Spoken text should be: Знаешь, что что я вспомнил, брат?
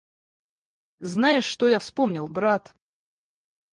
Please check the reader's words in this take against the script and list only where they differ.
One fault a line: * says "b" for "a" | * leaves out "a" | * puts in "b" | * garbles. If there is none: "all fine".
* leaves out "что"